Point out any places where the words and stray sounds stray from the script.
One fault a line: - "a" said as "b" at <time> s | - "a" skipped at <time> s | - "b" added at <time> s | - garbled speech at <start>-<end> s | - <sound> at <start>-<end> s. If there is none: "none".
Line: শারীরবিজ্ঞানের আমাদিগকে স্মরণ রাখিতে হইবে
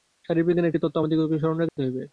- "একটি তত্ত্ব" added at 0.7 s
- dropout at 1.7-1.8 s